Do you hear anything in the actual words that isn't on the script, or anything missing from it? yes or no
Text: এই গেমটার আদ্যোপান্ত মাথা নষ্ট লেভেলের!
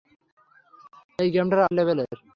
yes